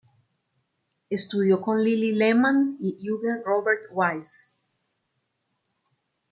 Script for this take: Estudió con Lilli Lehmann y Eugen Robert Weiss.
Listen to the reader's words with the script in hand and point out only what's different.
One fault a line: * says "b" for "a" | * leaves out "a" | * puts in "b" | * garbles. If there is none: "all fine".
all fine